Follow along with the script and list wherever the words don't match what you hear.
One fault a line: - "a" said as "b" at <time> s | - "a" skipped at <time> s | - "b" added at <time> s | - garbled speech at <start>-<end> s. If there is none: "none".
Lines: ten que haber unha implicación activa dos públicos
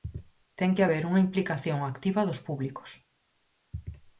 none